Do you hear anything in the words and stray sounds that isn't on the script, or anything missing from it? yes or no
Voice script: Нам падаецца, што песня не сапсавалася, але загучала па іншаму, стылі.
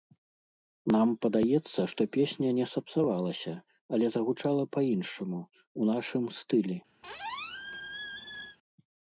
yes